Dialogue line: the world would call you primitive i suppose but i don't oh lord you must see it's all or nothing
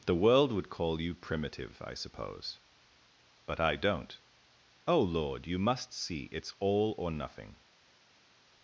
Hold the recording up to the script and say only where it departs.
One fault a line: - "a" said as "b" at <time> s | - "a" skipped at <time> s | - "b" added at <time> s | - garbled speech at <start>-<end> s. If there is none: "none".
none